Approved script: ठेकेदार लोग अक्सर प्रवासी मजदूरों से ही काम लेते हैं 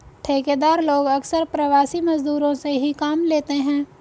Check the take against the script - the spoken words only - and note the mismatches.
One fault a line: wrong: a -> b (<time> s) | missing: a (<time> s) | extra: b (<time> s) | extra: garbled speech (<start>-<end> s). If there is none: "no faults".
no faults